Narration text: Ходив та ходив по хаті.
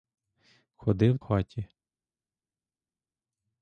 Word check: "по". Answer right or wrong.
wrong